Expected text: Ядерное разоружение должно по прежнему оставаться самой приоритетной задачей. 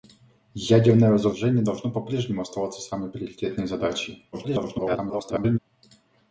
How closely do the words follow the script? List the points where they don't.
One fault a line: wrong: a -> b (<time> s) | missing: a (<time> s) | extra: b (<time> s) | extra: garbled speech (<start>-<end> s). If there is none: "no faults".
extra: garbled speech (4.3-5.6 s)